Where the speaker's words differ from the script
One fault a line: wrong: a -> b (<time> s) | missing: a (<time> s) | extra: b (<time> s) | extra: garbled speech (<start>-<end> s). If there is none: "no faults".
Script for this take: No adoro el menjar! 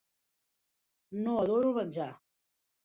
no faults